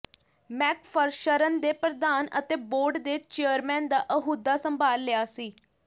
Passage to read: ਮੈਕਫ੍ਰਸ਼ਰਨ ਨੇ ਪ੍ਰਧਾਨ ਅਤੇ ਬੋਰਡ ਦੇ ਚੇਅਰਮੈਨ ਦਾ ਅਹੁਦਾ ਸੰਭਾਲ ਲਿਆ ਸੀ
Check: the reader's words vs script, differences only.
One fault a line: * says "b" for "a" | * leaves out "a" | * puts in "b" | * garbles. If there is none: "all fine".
all fine